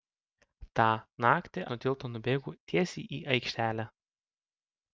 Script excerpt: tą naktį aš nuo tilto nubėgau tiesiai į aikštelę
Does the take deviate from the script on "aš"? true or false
true